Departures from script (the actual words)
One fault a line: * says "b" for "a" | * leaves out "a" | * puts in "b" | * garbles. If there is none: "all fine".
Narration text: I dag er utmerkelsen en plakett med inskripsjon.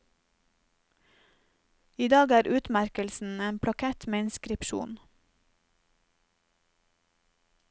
all fine